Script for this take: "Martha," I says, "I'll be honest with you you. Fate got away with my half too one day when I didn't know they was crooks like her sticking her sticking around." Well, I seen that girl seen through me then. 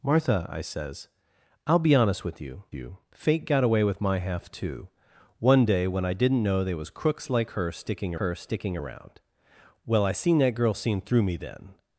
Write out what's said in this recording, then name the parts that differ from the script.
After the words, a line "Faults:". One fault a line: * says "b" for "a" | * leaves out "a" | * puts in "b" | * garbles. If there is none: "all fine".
"Martha," I says, "I'll be honest with you you. Fate got away with my half too one day when I didn't know they was crooks like her sticking her sticking around." Well, I seen that girl seen through me then.
Faults:
all fine